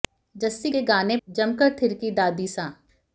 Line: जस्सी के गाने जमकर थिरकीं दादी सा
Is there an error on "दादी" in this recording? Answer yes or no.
no